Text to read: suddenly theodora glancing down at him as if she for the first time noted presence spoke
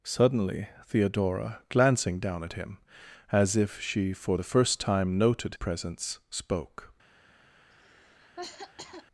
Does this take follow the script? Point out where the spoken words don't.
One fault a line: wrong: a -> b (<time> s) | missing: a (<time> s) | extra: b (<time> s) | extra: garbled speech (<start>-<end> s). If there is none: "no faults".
no faults